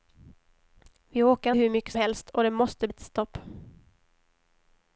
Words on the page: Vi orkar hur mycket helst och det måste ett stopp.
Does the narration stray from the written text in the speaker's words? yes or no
no